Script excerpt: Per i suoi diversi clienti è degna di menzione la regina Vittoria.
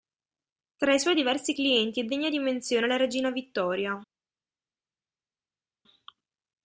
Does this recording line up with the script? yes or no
no